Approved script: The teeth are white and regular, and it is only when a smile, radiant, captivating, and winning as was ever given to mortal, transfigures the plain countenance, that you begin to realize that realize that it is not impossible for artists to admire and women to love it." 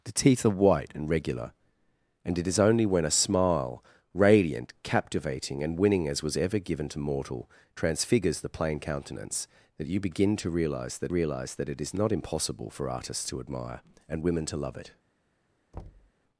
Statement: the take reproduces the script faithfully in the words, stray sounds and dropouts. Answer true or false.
false